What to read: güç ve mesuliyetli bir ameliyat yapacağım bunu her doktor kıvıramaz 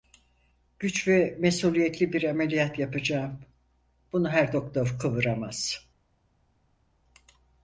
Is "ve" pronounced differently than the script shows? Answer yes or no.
no